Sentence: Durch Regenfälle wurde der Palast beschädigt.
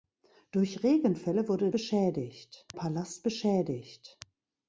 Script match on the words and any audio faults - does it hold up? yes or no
no